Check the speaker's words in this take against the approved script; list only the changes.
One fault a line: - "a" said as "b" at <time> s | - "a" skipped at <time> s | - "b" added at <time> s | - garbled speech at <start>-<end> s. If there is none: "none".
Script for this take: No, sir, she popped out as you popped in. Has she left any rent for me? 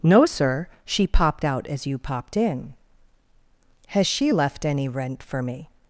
none